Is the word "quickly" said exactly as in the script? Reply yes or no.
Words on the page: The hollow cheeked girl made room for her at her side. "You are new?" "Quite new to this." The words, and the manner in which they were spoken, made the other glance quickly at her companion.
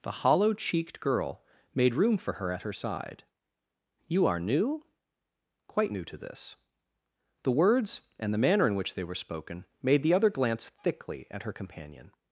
no